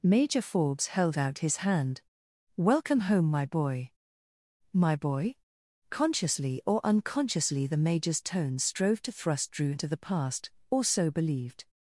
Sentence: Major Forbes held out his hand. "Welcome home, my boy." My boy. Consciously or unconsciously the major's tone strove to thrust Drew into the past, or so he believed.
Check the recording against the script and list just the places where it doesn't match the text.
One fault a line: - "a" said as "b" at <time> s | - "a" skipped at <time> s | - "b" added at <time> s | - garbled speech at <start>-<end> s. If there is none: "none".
- "he" skipped at 11.1 s